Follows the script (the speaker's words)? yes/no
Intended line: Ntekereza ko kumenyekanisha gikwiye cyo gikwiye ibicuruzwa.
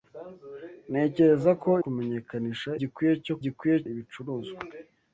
yes